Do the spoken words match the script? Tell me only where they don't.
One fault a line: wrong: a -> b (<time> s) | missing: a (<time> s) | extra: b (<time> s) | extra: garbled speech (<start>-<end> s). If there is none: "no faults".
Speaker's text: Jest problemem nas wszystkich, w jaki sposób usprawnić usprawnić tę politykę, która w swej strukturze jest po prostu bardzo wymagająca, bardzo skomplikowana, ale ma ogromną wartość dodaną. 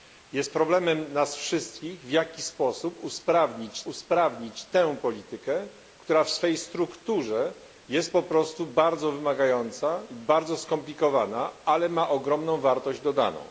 no faults